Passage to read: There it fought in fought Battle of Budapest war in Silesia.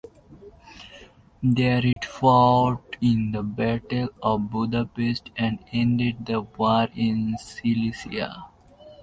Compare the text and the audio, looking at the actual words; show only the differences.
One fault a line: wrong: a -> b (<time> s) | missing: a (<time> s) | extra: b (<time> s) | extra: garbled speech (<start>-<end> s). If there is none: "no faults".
wrong: fought -> the (3.3 s)
extra: and ended the (5.3 s)